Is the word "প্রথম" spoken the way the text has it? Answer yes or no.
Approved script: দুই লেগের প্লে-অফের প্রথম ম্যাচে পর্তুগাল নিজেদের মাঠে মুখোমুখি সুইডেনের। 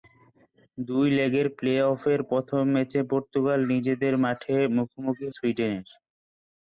yes